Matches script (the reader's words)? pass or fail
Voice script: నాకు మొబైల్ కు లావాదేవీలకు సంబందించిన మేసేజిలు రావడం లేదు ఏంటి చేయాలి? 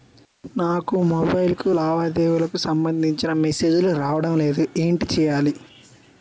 pass